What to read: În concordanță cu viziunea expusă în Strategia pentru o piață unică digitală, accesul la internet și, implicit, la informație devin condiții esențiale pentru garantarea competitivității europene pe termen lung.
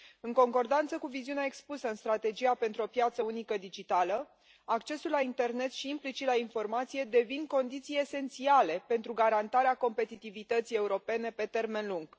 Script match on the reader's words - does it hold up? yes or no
yes